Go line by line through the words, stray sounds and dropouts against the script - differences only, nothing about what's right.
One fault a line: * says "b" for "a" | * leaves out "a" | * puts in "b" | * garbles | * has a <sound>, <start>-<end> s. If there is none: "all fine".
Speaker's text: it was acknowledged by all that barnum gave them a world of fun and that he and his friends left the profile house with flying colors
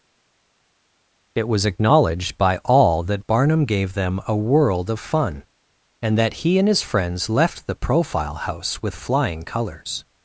all fine